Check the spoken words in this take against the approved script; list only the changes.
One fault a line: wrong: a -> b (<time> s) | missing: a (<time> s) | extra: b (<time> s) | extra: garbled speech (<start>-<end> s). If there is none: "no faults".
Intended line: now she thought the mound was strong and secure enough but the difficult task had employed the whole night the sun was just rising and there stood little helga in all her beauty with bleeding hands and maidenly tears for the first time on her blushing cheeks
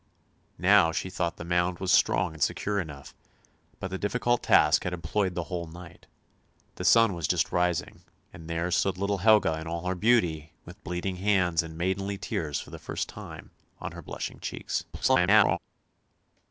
extra: garbled speech (14.9-15.6 s)